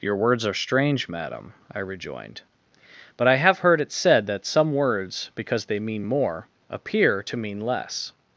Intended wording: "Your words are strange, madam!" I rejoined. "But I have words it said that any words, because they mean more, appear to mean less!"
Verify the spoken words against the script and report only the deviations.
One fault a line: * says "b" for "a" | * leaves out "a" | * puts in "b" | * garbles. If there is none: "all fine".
* says "heard" for "words"
* says "some" for "any"